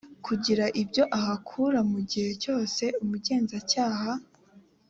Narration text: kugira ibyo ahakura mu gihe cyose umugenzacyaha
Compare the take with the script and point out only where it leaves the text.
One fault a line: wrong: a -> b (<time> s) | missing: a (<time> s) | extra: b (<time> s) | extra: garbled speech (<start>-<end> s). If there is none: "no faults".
no faults